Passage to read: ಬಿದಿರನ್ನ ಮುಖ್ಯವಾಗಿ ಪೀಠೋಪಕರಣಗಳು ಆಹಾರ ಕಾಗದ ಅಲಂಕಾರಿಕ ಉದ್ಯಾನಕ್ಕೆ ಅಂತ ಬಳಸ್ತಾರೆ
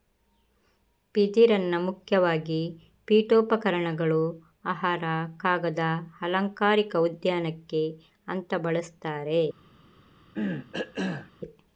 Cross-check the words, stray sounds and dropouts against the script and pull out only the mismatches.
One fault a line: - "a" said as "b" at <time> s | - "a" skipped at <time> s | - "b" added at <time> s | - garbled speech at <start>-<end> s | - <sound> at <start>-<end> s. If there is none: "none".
- cough at 10.3-11.3 s